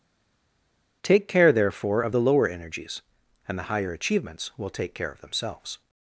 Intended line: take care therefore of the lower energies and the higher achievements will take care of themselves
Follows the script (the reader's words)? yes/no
yes